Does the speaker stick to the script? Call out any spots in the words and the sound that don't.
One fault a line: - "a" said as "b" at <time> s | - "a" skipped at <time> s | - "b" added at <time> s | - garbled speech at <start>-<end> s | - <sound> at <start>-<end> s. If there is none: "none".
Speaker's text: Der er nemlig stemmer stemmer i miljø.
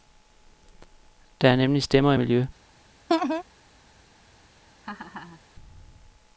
- "stemmer" skipped at 2.1 s
- laugh at 3.1-3.4 s
- laugh at 4.8-5.4 s